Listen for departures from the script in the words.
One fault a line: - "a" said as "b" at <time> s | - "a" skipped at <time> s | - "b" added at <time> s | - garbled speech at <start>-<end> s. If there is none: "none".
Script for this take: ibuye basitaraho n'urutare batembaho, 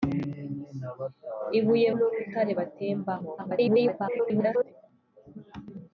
- "basitaraho" skipped at 1.9 s
- garbled speech at 3.4-4.7 s